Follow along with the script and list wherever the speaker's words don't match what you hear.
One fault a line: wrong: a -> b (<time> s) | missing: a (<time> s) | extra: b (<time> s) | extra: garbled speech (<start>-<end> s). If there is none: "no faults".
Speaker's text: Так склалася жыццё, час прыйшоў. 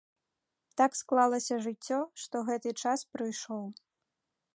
extra: што гэты (2.2 s)